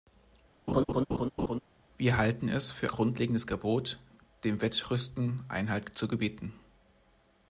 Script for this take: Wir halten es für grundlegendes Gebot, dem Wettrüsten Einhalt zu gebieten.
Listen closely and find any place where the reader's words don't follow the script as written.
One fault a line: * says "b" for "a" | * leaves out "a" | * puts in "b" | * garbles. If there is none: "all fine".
all fine